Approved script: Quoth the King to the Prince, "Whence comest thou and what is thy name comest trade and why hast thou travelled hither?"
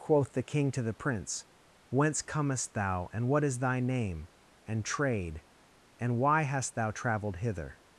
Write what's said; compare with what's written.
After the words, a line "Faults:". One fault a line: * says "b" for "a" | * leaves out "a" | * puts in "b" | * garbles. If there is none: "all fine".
Quoth the King to the Prince, "Whence comest thou and what is thy name and trade and why hast thou travelled hither?"
Faults:
* says "and" for "comest"